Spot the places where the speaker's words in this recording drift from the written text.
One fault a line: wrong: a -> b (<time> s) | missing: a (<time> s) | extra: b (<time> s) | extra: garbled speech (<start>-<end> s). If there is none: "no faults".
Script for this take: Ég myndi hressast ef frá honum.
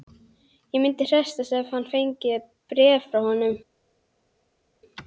extra: ég fengi bréf (1.7 s)